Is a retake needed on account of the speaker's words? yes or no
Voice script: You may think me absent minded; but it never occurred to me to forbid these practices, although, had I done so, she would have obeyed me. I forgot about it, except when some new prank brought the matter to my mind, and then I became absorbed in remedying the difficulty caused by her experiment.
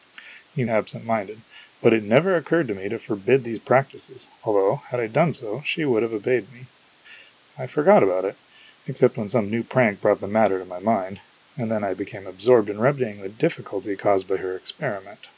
yes